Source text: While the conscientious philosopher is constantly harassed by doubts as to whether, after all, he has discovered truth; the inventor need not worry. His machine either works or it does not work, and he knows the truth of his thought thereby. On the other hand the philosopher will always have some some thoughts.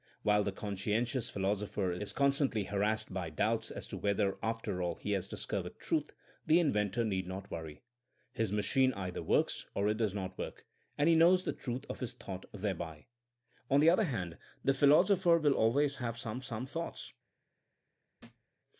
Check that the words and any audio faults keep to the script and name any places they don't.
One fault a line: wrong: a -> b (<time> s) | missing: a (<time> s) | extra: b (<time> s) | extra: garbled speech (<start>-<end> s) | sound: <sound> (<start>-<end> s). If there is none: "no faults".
sound: thud (18.2-18.5 s)